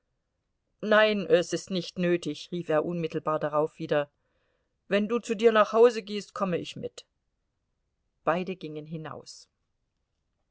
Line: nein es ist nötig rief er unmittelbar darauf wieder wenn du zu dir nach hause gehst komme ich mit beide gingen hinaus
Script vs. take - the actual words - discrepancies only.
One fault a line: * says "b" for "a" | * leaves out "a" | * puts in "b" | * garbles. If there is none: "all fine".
* puts in "nicht"